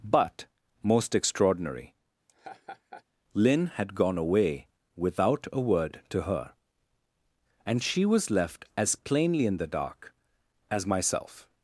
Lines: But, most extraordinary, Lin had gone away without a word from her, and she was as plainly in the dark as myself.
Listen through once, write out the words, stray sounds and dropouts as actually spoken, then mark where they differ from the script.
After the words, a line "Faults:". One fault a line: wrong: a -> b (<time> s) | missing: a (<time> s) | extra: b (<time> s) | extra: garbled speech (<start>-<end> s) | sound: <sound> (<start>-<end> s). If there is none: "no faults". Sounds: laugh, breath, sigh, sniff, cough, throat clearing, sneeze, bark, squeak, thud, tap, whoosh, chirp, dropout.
But, most extraordinary, Lin had gone away without a word to her, and she was left as plainly in the dark as myself.
Faults:
sound: laugh (2.3-3.0 s)
wrong: from -> to (6.1 s)
extra: left (8.3 s)